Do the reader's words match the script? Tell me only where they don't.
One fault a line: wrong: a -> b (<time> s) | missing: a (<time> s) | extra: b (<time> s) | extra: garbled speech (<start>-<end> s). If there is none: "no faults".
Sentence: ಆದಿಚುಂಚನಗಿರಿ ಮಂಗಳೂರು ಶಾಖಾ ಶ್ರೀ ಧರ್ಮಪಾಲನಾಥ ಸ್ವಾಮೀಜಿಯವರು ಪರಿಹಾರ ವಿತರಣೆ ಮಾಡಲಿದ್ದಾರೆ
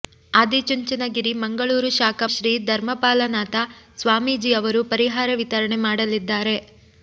no faults